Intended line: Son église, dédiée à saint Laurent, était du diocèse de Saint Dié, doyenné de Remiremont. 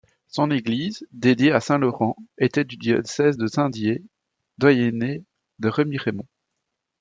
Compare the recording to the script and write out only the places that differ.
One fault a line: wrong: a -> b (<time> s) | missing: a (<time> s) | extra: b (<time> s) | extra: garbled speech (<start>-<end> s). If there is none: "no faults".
no faults